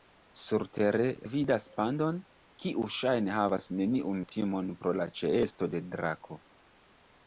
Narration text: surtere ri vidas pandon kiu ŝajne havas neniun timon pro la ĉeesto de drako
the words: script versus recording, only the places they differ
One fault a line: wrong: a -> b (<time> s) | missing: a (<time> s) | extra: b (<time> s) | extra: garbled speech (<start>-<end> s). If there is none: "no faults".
missing: ri (1.0 s)